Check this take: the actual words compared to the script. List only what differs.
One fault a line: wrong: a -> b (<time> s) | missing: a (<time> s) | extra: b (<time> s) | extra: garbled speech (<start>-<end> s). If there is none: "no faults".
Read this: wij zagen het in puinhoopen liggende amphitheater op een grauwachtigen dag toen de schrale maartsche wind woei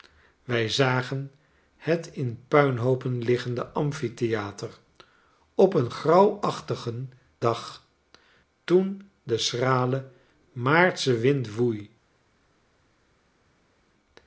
no faults